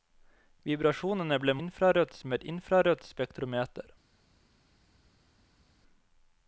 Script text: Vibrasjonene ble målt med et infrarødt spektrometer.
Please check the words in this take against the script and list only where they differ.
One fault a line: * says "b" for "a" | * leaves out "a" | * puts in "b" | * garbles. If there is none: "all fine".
* says "infrarødt" for "målt"